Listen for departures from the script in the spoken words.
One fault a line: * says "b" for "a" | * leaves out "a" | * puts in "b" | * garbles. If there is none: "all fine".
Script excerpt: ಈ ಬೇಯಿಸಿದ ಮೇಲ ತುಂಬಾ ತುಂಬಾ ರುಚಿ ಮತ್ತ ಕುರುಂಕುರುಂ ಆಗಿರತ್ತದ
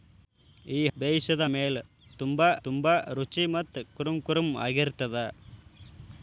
all fine